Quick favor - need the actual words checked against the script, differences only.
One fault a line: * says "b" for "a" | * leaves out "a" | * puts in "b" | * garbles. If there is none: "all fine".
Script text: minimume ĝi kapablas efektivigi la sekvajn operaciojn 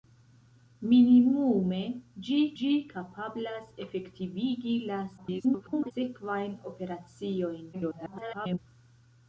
* puts in "ĝi"
* garbles
* garbles